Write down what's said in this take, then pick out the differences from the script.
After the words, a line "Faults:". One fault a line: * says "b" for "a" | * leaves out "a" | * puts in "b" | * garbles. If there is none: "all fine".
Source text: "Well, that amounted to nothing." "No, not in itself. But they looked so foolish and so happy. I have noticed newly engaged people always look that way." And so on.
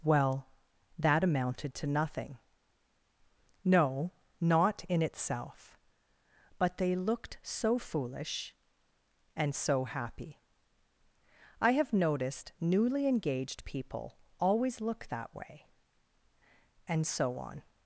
"Well, that amounted to nothing." "No, not in itself. But they looked so foolish and so happy. I have noticed newly engaged people always look that way." And so on.
Faults:
all fine